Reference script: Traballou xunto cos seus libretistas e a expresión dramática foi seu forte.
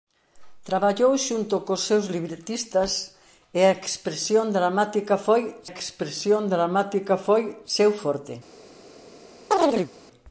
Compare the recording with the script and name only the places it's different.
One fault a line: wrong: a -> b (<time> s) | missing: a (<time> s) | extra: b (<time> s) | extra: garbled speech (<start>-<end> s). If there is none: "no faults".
extra: expresión dramática foi (5.7 s)